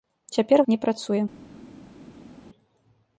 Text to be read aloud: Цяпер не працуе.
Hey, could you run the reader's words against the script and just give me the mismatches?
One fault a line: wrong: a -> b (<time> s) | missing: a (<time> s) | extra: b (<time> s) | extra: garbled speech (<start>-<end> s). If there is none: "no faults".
no faults